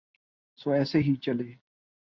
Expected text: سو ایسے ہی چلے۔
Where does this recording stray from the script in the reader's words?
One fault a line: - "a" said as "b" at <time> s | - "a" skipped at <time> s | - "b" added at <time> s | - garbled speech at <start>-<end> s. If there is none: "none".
none